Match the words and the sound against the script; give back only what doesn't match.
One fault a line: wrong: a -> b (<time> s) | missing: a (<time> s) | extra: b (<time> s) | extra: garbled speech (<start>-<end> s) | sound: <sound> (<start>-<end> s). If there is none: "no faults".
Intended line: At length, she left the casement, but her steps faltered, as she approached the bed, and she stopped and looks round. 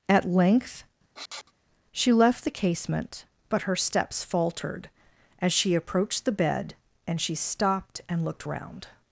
sound: sniff (1.1-1.5 s)
wrong: looks -> looked (8.2 s)